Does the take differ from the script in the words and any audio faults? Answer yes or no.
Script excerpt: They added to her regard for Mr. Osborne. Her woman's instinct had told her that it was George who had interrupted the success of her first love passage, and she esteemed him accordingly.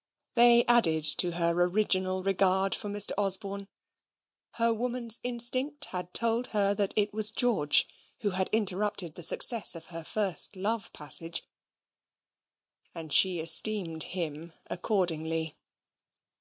yes